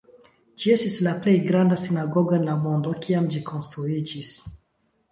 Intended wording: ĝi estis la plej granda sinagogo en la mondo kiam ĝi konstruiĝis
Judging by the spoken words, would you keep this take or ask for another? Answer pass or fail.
pass